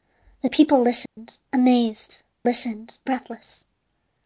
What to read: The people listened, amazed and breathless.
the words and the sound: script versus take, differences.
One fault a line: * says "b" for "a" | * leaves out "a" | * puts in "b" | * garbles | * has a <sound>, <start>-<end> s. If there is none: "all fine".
* has a dropout, 1.1-1.2 s
* says "listened" for "and"